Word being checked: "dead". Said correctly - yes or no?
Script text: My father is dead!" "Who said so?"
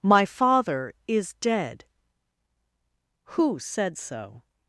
yes